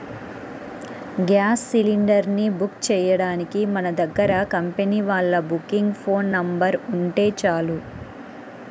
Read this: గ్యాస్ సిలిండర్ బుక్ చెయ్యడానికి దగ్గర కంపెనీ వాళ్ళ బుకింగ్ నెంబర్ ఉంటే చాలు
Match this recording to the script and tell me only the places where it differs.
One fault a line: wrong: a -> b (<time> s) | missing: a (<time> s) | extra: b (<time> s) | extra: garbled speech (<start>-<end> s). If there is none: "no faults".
extra: ని (2.3 s)
extra: మన (3.7 s)
extra: ఫోన్ (6.0 s)